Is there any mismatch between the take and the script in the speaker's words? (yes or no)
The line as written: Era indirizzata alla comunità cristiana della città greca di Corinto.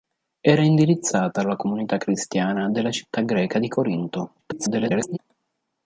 yes